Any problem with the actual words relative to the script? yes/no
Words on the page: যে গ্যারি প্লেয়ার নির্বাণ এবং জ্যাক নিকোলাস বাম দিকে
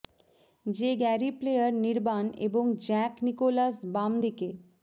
no